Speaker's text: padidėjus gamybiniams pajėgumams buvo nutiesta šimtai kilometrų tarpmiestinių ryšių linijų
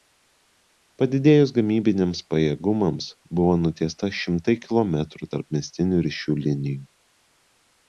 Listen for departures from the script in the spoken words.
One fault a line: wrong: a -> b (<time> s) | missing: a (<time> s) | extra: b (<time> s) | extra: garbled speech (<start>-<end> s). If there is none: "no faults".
no faults